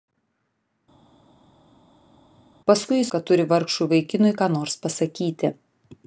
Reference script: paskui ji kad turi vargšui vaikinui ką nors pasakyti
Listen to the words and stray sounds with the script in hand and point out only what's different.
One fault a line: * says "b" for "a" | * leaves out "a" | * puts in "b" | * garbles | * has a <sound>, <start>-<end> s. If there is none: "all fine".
all fine